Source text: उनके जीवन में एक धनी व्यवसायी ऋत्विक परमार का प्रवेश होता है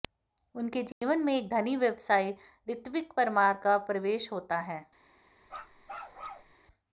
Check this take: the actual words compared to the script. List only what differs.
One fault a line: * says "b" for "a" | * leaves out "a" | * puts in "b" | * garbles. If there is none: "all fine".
all fine